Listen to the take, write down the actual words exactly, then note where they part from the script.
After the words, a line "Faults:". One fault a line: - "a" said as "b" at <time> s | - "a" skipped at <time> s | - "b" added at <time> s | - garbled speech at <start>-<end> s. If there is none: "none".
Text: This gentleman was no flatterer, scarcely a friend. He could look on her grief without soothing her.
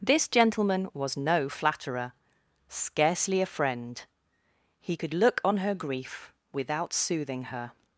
This gentleman was no flatterer, scarcely a friend. He could look on her grief without soothing her.
Faults:
none